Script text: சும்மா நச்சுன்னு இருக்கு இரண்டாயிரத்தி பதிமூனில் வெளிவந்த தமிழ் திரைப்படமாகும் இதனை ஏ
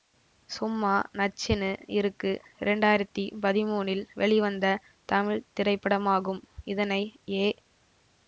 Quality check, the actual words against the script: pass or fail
pass